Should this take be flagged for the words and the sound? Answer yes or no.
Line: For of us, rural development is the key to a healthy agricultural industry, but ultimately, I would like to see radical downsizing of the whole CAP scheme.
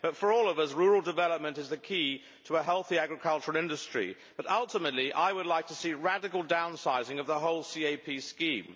yes